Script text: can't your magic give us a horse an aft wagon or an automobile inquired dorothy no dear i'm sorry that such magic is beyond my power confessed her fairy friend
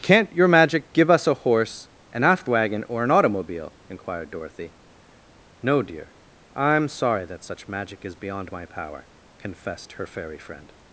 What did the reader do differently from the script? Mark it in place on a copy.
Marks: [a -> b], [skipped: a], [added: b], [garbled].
can't your magic give us a horse an aft wagon or an automobile inquired dorothy no dear i'm sorry that such magic is beyond my power confessed her fairy friend